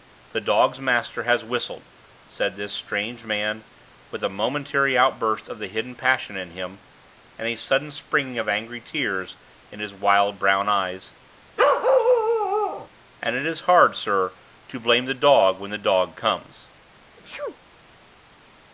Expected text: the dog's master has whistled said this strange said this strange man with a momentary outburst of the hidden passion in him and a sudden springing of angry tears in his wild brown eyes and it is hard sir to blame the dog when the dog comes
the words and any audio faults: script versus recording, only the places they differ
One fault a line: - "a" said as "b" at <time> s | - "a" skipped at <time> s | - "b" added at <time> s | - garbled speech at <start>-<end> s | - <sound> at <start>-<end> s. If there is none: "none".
- "said this strange" skipped at 3.2 s
- bark at 11.6-12.9 s
- sneeze at 17.2-17.6 s